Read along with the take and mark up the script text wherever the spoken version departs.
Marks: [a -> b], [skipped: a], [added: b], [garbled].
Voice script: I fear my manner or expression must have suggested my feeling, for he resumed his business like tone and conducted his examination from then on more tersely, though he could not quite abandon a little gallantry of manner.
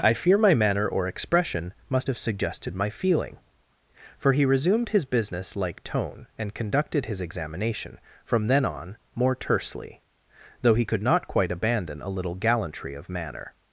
I fear my manner or expression must have suggested my feeling, for he resumed his business like tone and conducted his examination from then on more tersely, though he could not quite abandon a little gallantry of manner.